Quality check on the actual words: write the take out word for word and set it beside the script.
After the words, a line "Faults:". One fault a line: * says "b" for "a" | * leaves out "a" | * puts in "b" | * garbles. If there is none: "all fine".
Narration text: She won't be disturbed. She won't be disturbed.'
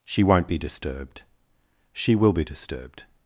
She won't be disturbed. She will be disturbed.'
Faults:
* says "will" for "won't"